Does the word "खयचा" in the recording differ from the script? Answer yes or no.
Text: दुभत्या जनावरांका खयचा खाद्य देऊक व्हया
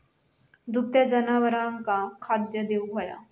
yes